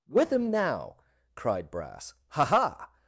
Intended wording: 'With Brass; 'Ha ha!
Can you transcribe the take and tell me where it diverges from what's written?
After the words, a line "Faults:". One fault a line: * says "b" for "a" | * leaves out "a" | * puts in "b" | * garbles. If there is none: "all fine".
'With him now!' cried Brass; 'Ha ha!
Faults:
* puts in "him now cried"